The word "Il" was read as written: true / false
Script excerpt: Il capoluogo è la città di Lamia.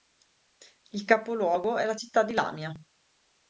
true